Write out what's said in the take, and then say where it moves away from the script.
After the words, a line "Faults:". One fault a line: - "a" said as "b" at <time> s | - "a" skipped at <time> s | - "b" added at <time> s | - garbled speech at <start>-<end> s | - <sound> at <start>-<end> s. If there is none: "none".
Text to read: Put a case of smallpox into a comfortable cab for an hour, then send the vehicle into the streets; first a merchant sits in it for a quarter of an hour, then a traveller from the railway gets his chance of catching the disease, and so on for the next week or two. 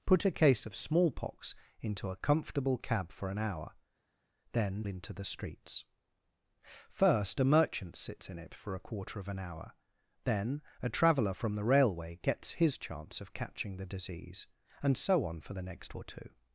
Put a case of smallpox into a comfortable cab for an hour, then into the streets; first a merchant sits in it for a quarter of an hour, then a traveller from the railway gets his chance of catching the disease, and so on for the next or two.
Faults:
- "send the vehicle" skipped at 4.9 s
- "week" skipped at 16.0 s